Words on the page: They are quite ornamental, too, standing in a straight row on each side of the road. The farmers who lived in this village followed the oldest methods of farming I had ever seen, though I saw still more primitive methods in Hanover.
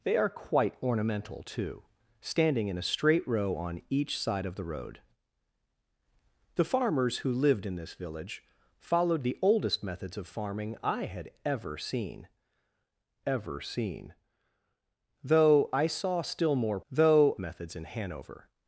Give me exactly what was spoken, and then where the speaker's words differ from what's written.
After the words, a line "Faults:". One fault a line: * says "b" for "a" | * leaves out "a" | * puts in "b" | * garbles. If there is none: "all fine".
They are quite ornamental, too, standing in a straight row on each side of the road. The farmers who lived in this village followed the oldest methods of farming I had ever seen ever seen, though I saw still more though methods in Hanover.
Faults:
* puts in "ever seen"
* says "though" for "primitive"